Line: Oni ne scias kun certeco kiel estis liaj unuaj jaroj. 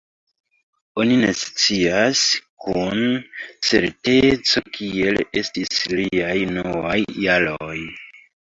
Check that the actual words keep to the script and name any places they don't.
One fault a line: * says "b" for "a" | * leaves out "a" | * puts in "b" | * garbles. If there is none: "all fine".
all fine